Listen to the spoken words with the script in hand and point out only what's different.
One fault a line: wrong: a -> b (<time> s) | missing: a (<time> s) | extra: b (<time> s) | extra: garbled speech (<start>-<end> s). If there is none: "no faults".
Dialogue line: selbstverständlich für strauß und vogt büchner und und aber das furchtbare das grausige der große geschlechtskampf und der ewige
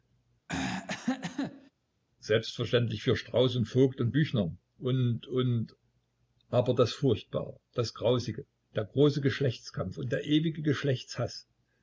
extra: und (4.0 s)